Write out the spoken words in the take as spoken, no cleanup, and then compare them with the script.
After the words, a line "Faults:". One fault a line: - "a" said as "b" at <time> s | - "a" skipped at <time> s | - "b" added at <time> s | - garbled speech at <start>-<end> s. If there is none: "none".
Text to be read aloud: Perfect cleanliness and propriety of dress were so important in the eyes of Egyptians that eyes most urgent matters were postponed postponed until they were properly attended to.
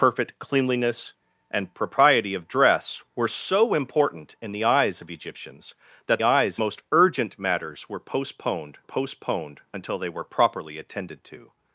Perfect cleanliness and propriety of dress were so important in the eyes of Egyptians that eyes most urgent matters were postponed postponed until they were properly attended to.
Faults:
none